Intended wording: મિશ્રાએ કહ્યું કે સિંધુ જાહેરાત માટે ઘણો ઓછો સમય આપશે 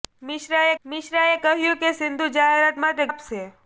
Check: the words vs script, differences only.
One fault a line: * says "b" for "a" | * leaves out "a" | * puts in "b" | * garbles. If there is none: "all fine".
* puts in "મિશ્રાએ"
* leaves out "ઘણો ઓછો સમય"